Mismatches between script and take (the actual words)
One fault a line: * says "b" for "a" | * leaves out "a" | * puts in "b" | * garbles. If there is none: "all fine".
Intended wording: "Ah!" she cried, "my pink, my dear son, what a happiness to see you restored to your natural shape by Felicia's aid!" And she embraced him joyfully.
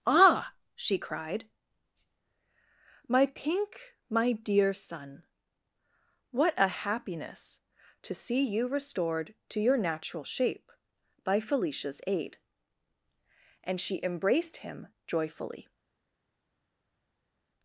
all fine